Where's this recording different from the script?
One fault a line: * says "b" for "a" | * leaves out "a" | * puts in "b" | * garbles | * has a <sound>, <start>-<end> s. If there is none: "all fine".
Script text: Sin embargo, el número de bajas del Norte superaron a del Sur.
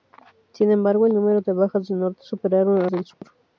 * has a dropout, 3.1-3.2 s